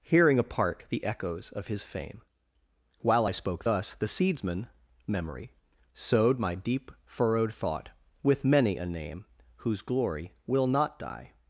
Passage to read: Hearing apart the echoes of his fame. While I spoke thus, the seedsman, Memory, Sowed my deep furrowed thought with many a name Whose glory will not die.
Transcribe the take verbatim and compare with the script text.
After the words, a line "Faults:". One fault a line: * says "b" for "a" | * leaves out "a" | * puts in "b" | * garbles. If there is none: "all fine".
Hearing apart the echoes of his fame. While I spoke thus, the seedsman, Memory, Sowed my deep furrowed thought with many a name Whose glory will not die.
Faults:
all fine